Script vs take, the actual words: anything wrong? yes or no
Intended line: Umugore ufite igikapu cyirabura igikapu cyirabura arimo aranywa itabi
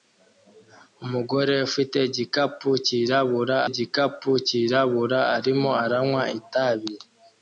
no